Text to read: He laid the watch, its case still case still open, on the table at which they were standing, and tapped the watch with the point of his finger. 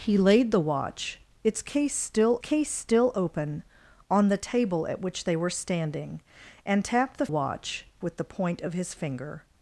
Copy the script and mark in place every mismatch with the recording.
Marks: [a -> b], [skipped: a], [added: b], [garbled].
He laid the watch, its case still case still open, on the table at which they were standing, and tapped the watch with the point of his finger.